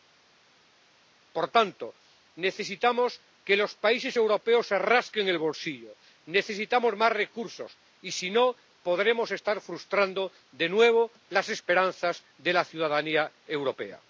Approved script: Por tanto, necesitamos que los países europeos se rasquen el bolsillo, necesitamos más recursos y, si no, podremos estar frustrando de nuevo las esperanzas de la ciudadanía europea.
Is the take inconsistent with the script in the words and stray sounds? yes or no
no